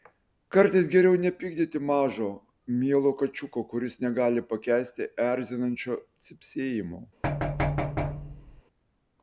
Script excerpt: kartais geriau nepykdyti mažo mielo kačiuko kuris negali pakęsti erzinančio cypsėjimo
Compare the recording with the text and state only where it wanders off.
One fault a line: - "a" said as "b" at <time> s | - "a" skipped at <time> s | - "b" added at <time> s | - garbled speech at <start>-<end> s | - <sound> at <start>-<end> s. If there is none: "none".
- thud at 7.2-8.6 s